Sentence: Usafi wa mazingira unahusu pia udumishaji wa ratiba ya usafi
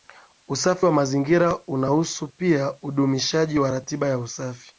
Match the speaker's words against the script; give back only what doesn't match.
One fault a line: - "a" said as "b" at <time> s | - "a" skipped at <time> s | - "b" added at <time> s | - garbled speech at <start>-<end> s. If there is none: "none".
none